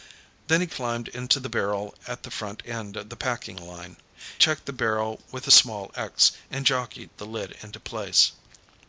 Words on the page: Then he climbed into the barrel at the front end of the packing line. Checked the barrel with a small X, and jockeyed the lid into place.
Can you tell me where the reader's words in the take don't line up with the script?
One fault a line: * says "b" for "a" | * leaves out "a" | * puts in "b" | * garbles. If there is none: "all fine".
all fine